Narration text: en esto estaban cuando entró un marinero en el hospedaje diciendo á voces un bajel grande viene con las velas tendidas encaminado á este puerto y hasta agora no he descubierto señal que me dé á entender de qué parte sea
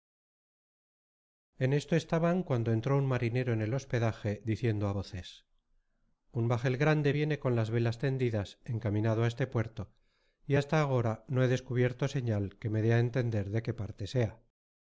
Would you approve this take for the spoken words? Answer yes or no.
yes